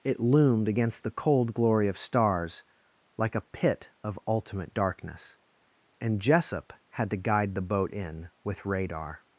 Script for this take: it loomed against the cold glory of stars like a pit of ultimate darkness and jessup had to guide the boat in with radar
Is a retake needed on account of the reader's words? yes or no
no